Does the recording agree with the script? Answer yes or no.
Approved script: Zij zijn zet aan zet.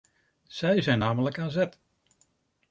no